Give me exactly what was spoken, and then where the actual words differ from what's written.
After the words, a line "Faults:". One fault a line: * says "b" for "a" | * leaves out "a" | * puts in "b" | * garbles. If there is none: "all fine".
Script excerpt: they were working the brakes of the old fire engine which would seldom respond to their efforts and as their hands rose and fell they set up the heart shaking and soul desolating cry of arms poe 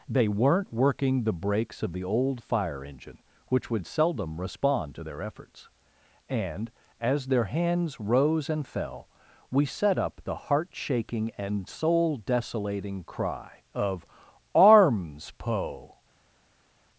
they weren't working the brakes of the old fire engine which would seldom respond to their efforts and as their hands rose and fell we set up the heart shaking and soul desolating cry of arms poe
Faults:
* says "weren't" for "were"
* says "we" for "they"